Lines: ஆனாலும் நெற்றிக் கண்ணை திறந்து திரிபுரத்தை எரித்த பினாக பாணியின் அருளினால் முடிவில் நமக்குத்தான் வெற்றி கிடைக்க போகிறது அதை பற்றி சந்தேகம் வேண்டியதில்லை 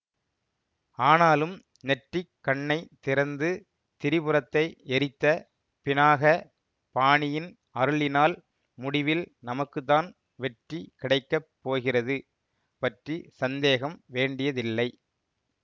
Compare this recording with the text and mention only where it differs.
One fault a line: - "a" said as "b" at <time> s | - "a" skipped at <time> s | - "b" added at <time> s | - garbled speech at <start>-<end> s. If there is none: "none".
- "அதை" skipped at 12.2 s